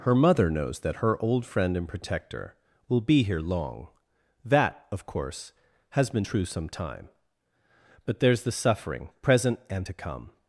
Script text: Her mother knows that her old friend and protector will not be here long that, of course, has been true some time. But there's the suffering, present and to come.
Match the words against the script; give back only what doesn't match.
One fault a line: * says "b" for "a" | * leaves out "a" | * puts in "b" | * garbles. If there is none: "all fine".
* leaves out "not"